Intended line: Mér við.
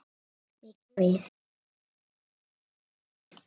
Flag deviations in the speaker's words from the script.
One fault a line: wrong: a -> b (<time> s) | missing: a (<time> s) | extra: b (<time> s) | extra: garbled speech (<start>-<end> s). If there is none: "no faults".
no faults